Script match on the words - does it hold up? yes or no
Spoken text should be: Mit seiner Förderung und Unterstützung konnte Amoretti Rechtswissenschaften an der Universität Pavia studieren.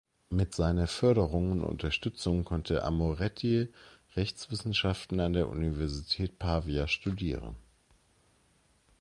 yes